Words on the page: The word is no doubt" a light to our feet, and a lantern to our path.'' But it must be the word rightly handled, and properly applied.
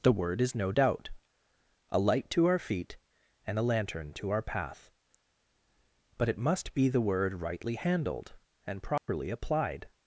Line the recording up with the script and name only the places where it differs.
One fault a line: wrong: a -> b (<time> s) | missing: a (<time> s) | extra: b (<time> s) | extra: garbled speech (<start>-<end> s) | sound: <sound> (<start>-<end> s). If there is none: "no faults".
sound: dropout (9.0-9.1 s)